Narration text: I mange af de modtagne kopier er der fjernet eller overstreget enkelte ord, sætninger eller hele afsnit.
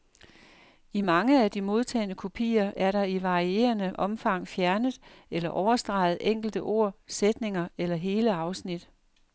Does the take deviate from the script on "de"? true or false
false